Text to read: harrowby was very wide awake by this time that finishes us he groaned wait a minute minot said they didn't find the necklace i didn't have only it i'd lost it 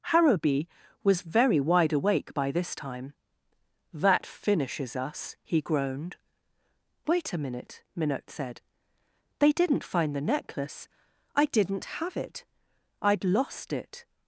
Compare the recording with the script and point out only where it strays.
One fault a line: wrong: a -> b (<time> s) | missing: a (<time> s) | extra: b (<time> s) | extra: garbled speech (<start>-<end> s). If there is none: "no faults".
missing: only (12.2 s)